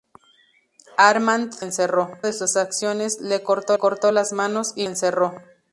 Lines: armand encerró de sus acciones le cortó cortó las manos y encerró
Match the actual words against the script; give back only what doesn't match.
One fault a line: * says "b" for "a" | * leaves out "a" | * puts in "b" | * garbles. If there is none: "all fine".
all fine